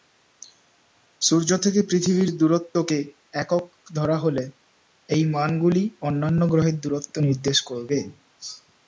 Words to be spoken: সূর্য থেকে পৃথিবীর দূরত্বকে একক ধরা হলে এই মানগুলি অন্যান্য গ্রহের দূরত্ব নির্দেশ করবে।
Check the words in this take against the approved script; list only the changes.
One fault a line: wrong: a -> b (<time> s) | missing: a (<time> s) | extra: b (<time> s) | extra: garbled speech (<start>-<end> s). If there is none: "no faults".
no faults